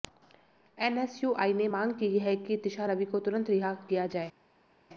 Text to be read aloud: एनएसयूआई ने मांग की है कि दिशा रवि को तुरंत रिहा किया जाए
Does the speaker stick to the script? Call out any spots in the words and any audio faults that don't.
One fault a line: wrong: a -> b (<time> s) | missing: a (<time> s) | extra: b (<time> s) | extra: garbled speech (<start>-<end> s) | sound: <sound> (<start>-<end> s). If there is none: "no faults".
no faults